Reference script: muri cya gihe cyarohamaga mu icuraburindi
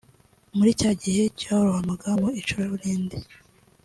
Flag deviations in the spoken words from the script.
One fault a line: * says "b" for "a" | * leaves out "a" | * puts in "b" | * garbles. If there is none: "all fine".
all fine